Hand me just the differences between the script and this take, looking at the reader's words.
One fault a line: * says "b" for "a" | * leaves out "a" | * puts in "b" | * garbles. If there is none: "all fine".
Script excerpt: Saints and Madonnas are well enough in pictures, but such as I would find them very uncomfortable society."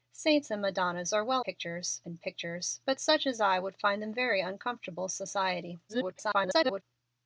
* says "pictures" for "enough"
* garbles